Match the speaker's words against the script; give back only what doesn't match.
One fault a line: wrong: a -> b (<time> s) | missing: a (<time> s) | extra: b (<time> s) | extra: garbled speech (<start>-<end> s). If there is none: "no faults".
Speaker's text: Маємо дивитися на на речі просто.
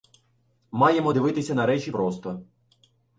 missing: на (1.7 s)